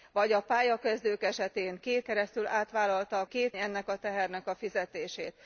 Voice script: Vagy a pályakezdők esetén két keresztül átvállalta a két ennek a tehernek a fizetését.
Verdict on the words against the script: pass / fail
pass